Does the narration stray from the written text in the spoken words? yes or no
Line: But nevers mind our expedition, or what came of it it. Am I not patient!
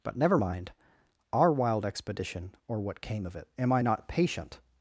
yes